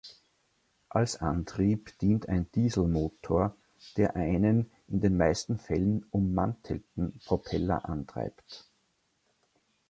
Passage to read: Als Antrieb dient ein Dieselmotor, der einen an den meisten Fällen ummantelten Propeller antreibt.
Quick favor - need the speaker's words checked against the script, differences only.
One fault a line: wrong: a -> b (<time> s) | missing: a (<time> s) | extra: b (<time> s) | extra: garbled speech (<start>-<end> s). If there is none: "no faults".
wrong: an -> in (4.9 s)